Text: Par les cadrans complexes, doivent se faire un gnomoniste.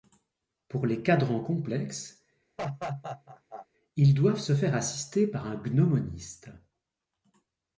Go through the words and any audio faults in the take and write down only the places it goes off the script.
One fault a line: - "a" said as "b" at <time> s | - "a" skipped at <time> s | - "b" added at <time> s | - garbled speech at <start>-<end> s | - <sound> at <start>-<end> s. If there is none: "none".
- "Par" said as "Pour" at 0.7 s
- laugh at 2.6-3.7 s
- "ils" added at 4.0 s
- "assister par" added at 4.8 s